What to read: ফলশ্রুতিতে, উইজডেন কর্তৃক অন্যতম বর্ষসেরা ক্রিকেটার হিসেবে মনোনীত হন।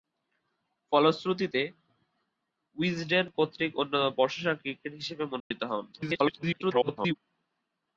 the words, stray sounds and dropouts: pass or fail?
fail